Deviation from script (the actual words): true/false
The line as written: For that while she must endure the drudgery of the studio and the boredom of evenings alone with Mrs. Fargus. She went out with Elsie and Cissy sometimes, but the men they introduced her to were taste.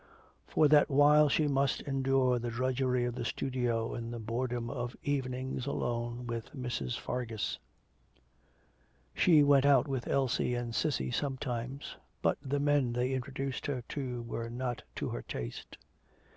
true